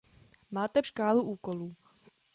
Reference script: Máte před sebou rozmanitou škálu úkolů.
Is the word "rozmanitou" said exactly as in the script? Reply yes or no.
no